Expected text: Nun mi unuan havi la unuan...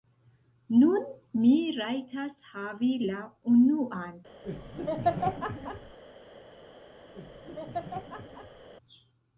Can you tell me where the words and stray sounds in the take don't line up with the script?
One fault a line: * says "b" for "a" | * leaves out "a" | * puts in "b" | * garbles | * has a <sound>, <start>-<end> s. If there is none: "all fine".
* says "rajtas" for "unuan"
* has a laugh, 4.4-6.0 s
* has a laugh, 7.1-8.7 s